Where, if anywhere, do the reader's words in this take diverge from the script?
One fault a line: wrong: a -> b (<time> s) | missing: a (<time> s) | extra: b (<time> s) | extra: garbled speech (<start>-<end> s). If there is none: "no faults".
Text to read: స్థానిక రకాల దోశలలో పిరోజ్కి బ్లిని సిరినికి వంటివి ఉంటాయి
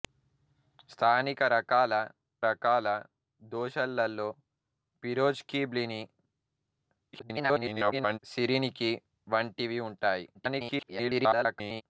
extra: రకాల (2.5 s)
extra: garbled speech (7.1-8.2 s)
extra: garbled speech (10.3-11.8 s)